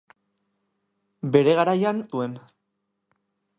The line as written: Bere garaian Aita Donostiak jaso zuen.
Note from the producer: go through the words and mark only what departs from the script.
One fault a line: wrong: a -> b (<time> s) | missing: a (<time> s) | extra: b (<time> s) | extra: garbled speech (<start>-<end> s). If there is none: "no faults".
missing: Aita Donostiak jaso (2.0 s)